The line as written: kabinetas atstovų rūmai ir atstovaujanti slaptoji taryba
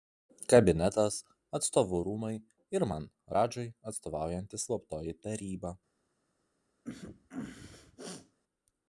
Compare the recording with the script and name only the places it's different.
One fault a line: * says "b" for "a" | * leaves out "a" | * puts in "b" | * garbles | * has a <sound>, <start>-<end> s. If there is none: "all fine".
* puts in "man radžai"
* has a sneeze, 6.8-8.4 s